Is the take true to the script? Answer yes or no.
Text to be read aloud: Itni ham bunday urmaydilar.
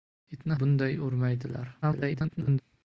no